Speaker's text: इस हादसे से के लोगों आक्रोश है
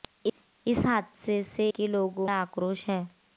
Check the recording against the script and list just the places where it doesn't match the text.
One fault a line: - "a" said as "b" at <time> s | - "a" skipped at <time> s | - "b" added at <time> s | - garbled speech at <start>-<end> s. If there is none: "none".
none